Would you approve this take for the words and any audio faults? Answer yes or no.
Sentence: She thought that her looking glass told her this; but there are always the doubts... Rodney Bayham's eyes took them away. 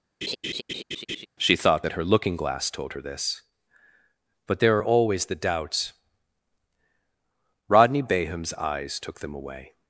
no